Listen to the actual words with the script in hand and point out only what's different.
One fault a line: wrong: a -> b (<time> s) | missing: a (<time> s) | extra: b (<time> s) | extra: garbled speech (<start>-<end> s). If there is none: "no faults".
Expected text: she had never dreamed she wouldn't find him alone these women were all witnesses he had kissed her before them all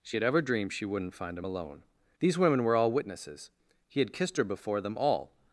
wrong: never -> ever (0.2 s)